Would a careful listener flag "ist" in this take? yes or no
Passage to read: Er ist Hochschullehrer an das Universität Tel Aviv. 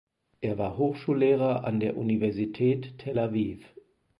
yes